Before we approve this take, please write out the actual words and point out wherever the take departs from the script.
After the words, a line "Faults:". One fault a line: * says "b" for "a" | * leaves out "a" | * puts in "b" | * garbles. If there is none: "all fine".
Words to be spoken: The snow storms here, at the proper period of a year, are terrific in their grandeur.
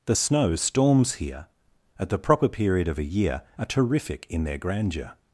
The snow storms here, at the proper period of a year, are terrific in their grandeur.
Faults:
all fine